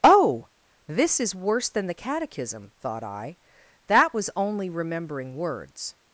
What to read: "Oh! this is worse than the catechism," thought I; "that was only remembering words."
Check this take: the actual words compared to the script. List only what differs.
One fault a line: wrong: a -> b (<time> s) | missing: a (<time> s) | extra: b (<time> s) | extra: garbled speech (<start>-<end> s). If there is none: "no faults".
no faults